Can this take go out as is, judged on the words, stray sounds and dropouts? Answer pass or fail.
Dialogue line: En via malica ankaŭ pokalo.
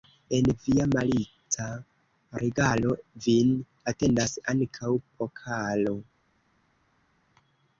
fail